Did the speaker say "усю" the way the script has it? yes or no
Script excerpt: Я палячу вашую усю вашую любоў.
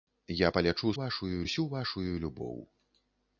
yes